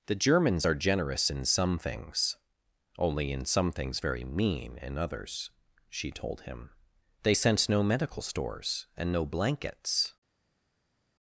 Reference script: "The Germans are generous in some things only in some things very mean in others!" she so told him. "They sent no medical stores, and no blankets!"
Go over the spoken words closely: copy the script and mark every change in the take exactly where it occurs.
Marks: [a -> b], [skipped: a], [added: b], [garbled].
"The Germans are generous in some things only in some things very mean in others!" she [skipped: so] told him. "They sent no medical stores, and no blankets!"